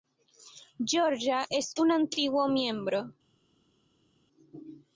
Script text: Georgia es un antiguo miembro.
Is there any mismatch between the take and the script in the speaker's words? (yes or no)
no